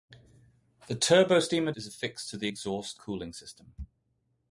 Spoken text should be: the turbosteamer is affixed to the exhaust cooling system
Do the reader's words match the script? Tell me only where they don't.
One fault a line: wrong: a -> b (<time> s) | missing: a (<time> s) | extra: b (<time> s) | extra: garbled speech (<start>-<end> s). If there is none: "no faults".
no faults